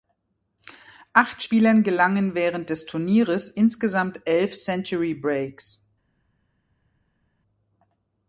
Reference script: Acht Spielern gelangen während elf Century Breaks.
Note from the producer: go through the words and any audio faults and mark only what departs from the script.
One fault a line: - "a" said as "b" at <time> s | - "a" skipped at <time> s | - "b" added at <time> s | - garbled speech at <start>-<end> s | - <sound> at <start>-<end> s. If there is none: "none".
- "des Turnieres insgesamt" added at 2.7 s